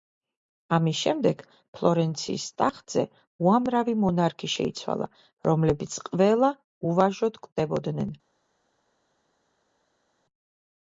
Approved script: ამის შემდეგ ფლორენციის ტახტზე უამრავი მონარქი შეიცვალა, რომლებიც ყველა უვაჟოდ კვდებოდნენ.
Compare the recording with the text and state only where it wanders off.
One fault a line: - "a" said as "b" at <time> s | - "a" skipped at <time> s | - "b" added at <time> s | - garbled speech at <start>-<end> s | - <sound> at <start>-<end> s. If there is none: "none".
none